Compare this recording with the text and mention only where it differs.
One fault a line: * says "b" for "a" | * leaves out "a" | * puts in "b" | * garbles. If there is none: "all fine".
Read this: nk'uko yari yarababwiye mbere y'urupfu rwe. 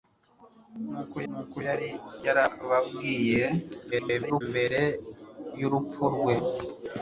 * puts in "nk'uko"
* garbles